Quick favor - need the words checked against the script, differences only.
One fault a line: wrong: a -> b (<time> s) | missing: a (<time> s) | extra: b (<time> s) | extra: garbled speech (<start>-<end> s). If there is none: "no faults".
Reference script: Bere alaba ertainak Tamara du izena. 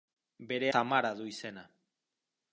missing: alaba ertainak (0.7 s)